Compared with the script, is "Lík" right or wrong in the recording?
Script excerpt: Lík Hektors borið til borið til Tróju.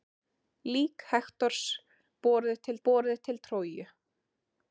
right